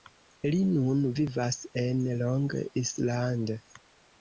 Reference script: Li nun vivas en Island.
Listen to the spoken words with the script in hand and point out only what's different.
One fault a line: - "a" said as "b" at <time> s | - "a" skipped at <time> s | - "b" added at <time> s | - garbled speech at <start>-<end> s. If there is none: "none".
- "Long" added at 2.2 s